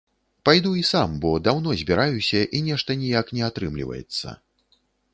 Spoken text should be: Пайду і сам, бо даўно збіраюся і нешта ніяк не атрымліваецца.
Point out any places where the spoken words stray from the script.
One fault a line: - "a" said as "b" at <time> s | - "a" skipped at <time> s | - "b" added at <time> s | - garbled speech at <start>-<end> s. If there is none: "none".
none